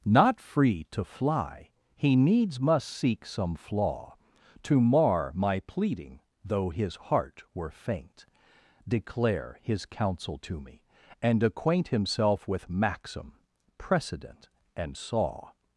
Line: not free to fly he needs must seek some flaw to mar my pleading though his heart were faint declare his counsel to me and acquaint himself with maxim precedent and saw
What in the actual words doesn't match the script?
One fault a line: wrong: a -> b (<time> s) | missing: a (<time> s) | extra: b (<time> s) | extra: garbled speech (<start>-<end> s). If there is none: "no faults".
no faults